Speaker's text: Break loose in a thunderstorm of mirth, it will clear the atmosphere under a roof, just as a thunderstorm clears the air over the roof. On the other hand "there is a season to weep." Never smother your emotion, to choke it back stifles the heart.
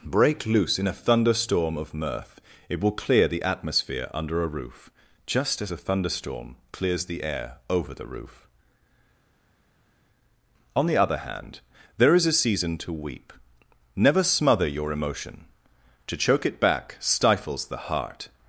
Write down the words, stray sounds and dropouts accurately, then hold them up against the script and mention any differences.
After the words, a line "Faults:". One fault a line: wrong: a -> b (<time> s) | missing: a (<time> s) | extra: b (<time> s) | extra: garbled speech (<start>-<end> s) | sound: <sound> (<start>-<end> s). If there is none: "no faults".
Break loose in a thunderstorm of mirth, it will clear the atmosphere under a roof, just as a thunderstorm clears the air over the roof. On the other hand "there is a season to weep." Never smother your emotion, to choke it back stifles the heart.
Faults:
no faults